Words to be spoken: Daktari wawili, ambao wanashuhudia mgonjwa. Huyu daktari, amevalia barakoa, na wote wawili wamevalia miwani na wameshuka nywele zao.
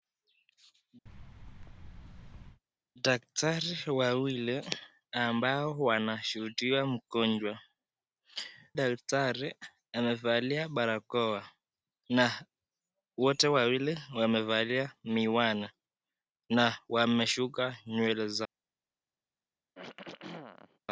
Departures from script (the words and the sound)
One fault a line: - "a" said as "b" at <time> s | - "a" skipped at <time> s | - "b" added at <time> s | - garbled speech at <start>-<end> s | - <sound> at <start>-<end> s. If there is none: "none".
- thud at 1.1-2.6 s
- "Huyu" skipped at 7.6 s
- throat clearing at 19.8-20.8 s